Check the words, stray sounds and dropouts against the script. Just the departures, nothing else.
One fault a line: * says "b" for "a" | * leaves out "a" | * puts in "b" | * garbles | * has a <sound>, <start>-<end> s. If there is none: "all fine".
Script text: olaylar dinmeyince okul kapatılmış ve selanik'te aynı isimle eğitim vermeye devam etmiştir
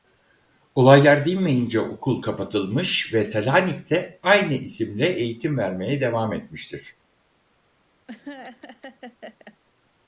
* has a laugh, 8.1-9.6 s